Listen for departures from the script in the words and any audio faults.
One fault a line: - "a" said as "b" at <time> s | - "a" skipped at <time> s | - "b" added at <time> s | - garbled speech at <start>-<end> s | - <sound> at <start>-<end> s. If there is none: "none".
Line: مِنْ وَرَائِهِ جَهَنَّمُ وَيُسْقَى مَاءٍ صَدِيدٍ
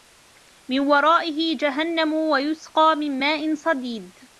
- "مِنْ" added at 3.0 s